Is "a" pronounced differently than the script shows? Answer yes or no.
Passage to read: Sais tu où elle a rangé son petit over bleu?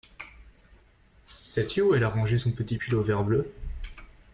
no